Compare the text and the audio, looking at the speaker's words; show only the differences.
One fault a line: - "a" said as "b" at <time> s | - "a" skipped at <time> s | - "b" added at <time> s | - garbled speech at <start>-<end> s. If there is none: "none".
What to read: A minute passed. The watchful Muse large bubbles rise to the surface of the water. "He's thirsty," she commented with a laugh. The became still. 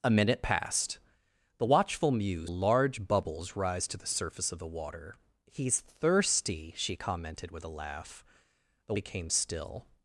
none